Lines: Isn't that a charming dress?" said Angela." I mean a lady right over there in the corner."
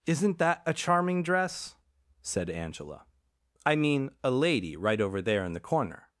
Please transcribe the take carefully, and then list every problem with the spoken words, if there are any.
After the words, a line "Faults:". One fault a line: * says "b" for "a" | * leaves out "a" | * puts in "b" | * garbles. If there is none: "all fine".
Isn't that a charming dress?" said Angela." I mean a lady right over there in the corner."
Faults:
all fine